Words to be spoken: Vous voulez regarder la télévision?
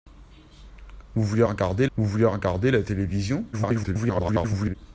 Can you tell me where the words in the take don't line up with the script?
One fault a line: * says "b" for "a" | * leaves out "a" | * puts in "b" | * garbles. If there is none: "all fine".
* puts in "vous voulez regarder"
* garbles